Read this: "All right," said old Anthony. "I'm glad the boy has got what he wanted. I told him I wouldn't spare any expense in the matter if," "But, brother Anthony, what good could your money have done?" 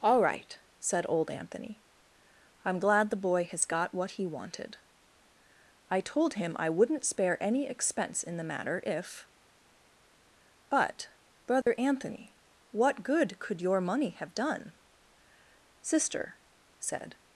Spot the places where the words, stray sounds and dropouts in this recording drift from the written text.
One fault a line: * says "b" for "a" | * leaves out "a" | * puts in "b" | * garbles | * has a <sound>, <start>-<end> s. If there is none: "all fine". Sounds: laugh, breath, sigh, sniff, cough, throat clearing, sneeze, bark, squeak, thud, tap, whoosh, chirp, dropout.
* has a dropout, 11.6-11.7 s
* puts in "Sister said"